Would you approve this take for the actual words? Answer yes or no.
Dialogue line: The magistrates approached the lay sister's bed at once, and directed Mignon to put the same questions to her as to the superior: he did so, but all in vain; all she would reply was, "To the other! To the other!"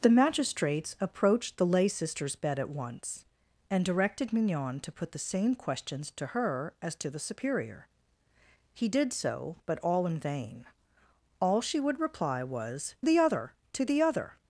no